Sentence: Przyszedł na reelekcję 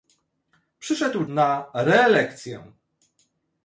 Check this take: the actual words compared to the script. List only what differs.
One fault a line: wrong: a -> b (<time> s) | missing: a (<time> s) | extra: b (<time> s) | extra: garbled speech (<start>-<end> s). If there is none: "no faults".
no faults